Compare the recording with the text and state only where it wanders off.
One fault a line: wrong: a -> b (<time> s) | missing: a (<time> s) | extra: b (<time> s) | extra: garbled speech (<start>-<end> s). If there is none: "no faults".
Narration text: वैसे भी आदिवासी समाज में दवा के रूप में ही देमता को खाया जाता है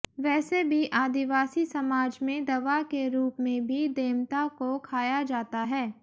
wrong: ही -> भी (3.7 s)